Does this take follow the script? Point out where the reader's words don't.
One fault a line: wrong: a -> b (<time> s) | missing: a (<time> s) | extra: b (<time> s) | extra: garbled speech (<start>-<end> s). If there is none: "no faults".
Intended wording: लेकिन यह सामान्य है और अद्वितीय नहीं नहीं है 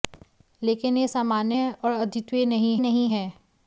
no faults